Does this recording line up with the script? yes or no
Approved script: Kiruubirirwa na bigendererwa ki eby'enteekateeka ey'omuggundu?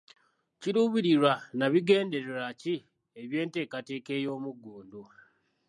yes